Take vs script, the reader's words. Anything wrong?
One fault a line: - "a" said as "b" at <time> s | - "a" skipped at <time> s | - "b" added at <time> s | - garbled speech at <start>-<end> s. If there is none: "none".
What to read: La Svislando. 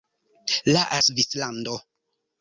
none